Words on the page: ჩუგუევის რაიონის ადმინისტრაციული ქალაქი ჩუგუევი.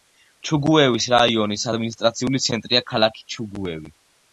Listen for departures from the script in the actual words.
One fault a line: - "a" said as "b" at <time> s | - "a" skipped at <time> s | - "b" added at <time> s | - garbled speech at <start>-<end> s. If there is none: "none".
- "ცენტრია" added at 2.5 s